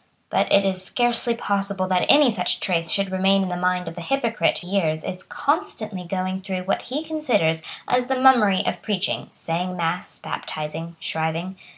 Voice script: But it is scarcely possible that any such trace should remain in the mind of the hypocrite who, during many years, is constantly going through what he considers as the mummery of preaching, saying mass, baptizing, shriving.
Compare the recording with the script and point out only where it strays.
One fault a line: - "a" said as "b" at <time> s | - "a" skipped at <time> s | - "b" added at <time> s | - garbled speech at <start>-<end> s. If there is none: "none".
- "who during many" skipped at 4.6 s